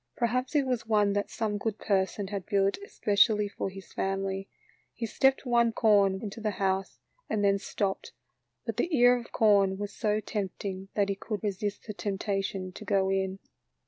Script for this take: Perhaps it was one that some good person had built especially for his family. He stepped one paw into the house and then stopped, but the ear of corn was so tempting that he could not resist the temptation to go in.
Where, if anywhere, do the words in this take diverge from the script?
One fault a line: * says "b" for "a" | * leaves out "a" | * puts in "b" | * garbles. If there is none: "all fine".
* says "corn" for "paw"
* leaves out "not"